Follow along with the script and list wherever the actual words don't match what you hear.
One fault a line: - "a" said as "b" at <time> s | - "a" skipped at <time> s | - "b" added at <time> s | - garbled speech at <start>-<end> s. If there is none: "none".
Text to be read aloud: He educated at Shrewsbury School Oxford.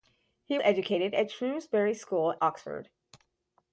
none